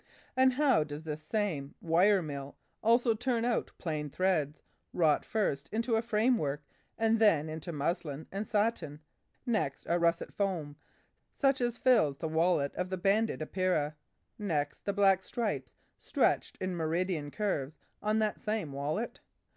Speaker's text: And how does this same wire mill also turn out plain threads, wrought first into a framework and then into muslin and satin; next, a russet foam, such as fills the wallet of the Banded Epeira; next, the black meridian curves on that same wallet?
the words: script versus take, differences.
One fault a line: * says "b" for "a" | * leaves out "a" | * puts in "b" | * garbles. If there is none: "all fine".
* puts in "stripes stretched in"